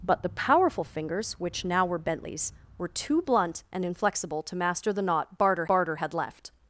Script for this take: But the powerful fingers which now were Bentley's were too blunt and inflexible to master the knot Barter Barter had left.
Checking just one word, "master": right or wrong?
right